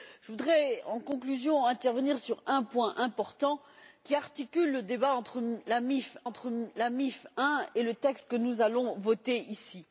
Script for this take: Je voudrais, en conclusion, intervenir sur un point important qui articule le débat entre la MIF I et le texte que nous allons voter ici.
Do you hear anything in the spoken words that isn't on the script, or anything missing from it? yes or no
yes